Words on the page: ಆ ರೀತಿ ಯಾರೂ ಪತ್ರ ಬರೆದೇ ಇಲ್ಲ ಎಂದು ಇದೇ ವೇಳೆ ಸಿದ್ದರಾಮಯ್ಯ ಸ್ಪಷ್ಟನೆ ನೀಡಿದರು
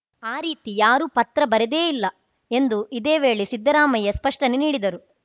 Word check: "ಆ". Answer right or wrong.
right